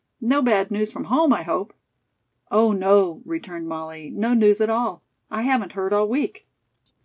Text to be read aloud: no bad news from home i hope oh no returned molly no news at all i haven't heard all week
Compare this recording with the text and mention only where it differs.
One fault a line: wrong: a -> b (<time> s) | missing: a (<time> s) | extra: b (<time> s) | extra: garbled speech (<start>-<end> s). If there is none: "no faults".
no faults